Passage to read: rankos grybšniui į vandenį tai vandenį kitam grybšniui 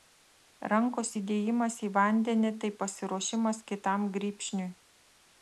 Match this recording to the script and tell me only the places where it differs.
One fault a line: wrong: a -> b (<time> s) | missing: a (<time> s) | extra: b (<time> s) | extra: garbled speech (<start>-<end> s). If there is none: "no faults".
wrong: grybšniui -> įdėjimas (1.2 s)
wrong: vandenį -> pasiruošimas (2.8 s)